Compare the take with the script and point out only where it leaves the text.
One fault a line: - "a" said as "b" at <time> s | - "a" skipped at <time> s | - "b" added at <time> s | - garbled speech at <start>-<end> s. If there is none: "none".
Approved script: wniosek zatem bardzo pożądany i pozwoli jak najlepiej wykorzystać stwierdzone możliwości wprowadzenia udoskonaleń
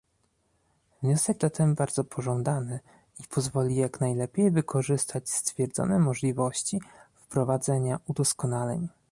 none